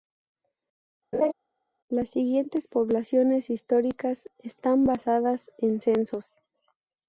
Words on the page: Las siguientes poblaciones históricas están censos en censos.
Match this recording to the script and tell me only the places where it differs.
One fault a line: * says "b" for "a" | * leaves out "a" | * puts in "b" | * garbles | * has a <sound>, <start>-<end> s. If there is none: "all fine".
* has a laugh, 1.1-1.3 s
* says "basadas" for "censos"